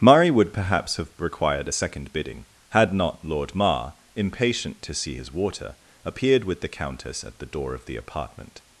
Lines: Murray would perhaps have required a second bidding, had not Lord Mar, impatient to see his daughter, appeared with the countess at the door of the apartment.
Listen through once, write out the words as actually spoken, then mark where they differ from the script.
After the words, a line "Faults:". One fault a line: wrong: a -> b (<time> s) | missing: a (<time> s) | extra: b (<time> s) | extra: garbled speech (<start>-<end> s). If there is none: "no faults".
Murray would perhaps have required a second bidding, had not Lord Mar, impatient to see his water, appeared with the countess at the door of the apartment.
Faults:
wrong: daughter -> water (5.3 s)